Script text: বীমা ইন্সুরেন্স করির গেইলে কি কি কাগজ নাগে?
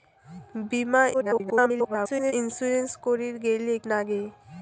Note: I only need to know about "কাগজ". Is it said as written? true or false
false